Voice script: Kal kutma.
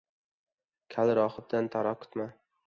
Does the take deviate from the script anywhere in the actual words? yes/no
yes